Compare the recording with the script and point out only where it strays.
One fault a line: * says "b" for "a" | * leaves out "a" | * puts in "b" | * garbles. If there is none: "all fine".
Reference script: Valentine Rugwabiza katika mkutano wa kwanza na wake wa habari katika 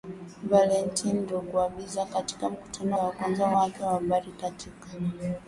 all fine